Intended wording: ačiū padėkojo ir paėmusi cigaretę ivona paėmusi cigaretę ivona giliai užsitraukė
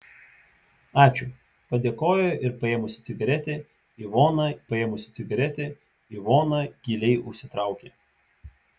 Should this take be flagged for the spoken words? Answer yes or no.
no